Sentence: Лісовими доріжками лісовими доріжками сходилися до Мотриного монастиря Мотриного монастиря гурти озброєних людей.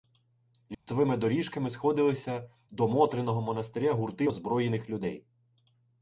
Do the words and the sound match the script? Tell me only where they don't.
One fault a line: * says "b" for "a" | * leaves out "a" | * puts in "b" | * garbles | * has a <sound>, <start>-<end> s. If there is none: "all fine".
* has a dropout, 0.7-0.9 s
* leaves out "лісовими доріжками"
* leaves out "Мотриного монастиря"